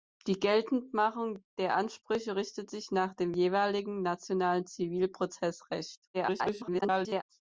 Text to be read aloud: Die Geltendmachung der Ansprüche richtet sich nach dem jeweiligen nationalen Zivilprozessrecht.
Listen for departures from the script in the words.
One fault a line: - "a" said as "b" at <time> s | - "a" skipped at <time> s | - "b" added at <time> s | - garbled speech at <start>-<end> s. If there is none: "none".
- garbled speech at 6.1-7.2 s